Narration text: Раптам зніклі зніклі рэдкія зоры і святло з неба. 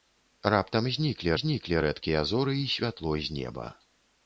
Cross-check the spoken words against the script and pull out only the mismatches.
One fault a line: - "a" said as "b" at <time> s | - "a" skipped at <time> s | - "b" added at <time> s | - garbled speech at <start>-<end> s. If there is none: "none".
none